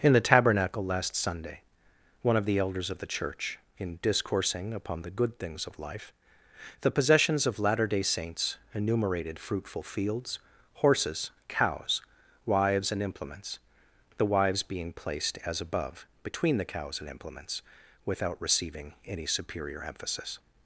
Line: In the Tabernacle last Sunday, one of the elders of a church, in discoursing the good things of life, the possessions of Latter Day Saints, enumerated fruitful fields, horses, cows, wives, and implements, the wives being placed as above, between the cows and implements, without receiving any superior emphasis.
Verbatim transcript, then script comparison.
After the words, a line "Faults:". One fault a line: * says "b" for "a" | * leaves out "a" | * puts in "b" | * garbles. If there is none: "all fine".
In the Tabernacle last Sunday, one of the elders of the church, in discoursing upon the good things of life, the possessions of Latter Day Saints, enumerated fruitful fields, horses, cows, wives, and implements, the wives being placed as above, between the cows and implements, without receiving any superior emphasis.
Faults:
* says "the" for "a"
* puts in "upon"